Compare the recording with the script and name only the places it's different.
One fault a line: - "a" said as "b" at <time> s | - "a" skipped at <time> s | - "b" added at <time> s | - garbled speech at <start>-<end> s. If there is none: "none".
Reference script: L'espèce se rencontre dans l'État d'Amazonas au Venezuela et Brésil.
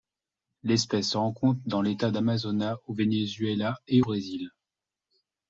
none